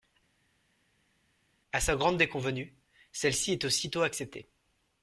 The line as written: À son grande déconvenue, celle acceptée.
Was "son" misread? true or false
true